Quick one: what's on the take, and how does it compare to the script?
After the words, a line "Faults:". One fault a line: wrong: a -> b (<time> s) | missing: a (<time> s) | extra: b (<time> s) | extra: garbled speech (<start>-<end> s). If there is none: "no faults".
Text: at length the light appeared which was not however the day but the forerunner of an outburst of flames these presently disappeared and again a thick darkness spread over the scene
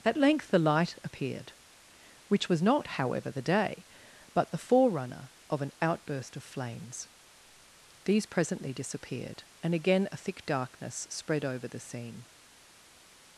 at length the light appeared which was not however the day but the forerunner of an outburst of flames these presently disappeared and again a thick darkness spread over the scene
Faults:
no faults